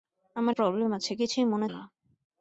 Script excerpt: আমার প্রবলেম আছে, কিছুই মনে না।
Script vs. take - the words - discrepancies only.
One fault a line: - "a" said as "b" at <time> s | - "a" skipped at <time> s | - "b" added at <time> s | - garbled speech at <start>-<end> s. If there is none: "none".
none